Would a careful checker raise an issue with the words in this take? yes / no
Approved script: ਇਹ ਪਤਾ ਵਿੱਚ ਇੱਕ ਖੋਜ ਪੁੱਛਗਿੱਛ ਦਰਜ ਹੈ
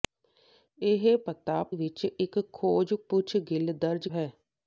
no